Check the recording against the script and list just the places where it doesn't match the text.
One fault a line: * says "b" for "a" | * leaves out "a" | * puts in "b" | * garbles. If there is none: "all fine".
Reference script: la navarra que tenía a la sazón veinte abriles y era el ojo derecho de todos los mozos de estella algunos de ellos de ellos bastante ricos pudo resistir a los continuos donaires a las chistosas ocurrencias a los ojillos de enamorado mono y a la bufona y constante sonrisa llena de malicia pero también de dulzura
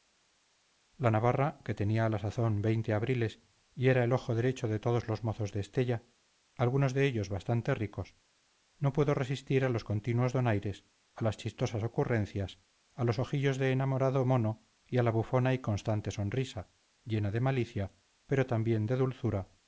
* leaves out "de ellos"
* puts in "no"